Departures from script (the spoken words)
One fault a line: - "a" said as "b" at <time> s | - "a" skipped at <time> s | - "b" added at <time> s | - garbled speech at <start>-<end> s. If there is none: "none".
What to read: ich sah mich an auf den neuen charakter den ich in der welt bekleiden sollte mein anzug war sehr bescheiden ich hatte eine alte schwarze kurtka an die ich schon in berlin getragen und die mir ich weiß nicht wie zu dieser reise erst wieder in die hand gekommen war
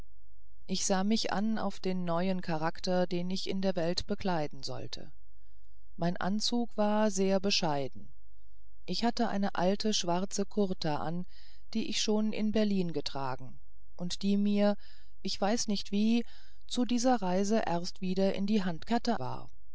- "gekommen" said as "hatte" at 18.9 s